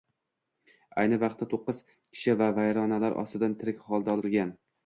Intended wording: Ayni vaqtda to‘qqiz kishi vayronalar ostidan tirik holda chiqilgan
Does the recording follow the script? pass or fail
pass